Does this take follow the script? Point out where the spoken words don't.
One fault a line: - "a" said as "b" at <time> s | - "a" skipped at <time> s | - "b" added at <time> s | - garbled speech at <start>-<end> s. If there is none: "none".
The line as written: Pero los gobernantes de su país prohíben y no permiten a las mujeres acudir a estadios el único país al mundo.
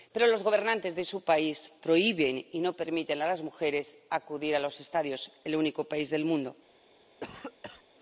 - "los" added at 4.6 s
- "al" said as "del" at 6.1 s